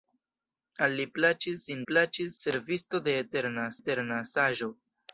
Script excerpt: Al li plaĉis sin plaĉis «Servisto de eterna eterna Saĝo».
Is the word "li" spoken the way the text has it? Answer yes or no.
yes